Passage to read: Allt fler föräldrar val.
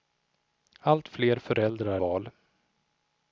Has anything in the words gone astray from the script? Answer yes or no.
no